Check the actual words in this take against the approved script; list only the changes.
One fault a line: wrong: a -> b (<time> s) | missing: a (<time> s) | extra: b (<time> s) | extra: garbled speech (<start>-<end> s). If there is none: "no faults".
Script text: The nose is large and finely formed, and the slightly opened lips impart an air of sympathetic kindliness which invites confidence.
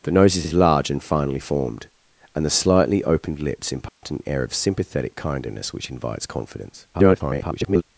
extra: is (0.4 s)
extra: garbled speech (6.9-7.8 s)